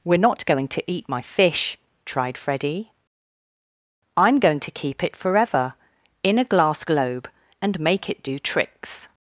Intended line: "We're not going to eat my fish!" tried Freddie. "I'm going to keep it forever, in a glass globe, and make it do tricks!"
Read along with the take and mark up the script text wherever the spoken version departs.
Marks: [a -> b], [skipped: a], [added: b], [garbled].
"We're not going to eat my fish!" tried Freddie. "I'm going to keep it forever, in a glass globe, and make it do tricks!"